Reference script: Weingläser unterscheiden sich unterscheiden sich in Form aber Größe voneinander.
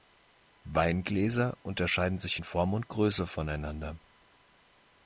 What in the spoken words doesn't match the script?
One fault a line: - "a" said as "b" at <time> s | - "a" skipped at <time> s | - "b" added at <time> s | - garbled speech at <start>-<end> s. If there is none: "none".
- "unterscheiden sich" skipped at 2.4 s
- "aber" said as "und" at 2.7 s